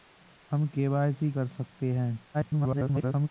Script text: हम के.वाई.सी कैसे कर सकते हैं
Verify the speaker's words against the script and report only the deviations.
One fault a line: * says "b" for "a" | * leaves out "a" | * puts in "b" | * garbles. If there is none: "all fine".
* leaves out "कैसे"
* garbles